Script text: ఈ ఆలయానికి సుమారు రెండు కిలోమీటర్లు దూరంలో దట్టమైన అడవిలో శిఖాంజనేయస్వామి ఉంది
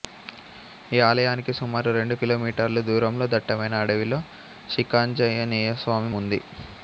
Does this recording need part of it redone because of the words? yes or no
no